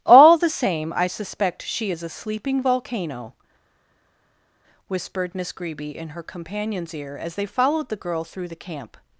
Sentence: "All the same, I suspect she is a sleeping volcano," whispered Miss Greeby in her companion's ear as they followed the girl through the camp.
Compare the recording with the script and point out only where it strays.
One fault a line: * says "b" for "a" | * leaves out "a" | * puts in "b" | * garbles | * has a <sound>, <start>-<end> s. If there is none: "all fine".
all fine